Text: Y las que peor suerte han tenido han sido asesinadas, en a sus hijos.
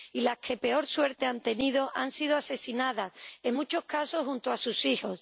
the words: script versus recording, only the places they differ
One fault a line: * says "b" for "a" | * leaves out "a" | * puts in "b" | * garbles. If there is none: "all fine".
* puts in "muchos casos junto"